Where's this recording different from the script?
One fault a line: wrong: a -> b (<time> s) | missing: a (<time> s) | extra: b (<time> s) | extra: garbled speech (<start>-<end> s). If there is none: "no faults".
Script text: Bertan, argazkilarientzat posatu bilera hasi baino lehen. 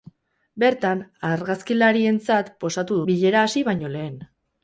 no faults